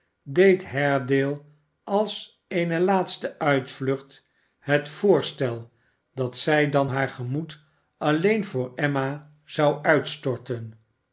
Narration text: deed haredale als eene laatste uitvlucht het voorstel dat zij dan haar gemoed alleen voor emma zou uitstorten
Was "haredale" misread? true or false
false